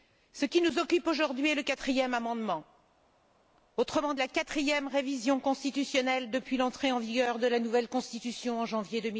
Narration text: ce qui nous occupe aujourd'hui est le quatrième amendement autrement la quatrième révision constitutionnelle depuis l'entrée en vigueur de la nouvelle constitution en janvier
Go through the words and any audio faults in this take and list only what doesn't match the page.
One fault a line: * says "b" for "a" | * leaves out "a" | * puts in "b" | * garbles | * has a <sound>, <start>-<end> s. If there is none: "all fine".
all fine